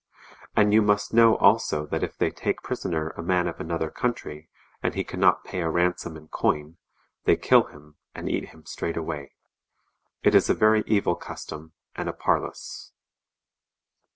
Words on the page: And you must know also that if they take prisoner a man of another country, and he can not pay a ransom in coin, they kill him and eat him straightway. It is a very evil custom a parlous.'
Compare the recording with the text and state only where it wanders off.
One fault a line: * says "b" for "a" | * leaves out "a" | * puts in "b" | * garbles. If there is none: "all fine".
* puts in "and"